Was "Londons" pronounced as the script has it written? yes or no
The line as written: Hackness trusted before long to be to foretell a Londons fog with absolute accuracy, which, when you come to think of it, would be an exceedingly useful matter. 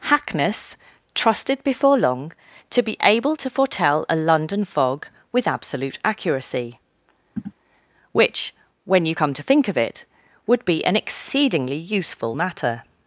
no